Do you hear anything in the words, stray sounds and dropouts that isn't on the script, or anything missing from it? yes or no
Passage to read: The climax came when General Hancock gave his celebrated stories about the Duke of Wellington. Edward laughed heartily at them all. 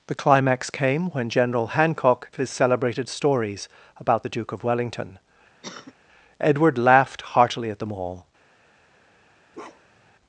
yes